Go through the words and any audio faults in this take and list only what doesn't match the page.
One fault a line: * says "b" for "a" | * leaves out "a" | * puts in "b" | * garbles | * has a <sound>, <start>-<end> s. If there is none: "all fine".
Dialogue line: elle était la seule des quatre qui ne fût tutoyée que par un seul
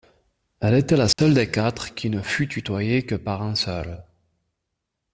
* has a dropout, 1.1-1.2 s